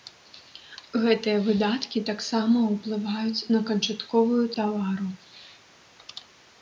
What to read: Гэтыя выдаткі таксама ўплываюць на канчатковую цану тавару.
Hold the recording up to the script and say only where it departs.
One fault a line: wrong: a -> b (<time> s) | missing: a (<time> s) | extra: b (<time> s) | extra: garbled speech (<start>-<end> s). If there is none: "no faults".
missing: цану (4.4 s)